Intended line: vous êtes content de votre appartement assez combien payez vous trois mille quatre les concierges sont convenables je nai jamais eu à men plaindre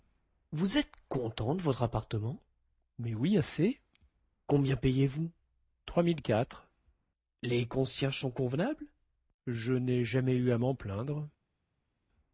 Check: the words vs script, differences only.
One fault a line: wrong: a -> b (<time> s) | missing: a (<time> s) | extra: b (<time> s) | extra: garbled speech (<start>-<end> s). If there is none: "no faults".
extra: mais oui (3.0 s)